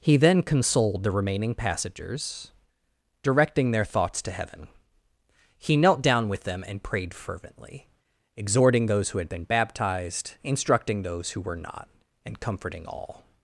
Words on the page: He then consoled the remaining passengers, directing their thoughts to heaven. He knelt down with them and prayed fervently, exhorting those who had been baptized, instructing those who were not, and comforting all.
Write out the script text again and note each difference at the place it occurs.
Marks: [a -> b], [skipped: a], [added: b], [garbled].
He then consoled the remaining passengers, directing their thoughts to heaven. He knelt down with them and prayed fervently, exhorting those who had been baptized, instructing those who were not, and comforting all.